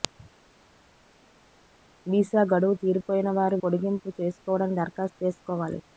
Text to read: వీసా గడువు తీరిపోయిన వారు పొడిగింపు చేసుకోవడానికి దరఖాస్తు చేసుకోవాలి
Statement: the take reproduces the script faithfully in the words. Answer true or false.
true